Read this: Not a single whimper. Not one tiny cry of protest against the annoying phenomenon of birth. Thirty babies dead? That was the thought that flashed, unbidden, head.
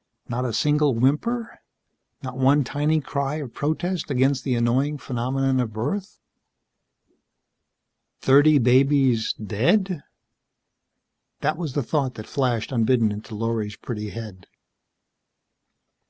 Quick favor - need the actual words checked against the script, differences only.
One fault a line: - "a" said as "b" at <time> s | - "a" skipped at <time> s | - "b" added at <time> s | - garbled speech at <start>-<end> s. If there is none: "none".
- "into Lorry's pretty" added at 13.1 s